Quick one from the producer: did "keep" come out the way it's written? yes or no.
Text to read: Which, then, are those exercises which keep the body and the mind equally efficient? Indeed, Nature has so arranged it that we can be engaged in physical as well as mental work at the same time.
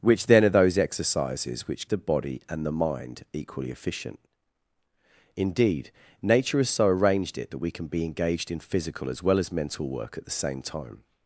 no